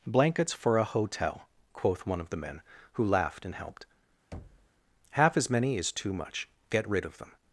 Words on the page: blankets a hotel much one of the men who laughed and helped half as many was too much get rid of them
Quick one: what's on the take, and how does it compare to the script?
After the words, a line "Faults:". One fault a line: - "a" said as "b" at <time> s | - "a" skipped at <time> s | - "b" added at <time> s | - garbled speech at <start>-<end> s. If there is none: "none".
blankets for a hotel quoth one of the men who laughed and helped half as many is too much get rid of them
Faults:
- "for" added at 0.5 s
- "much" said as "quoth" at 1.7 s
- "was" said as "is" at 5.8 s